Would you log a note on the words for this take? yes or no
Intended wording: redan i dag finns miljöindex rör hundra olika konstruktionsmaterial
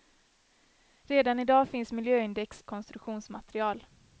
yes